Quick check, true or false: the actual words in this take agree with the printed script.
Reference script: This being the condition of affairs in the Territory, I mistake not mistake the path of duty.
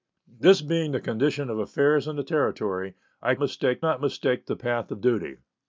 true